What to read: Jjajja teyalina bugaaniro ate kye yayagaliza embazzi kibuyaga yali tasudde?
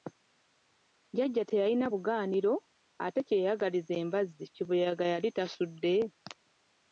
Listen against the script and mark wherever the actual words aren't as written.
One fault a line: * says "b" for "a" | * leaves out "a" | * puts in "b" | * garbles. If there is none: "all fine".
all fine